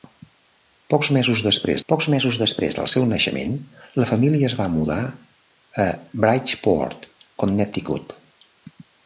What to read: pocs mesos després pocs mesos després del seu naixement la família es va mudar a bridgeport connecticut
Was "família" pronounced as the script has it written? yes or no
yes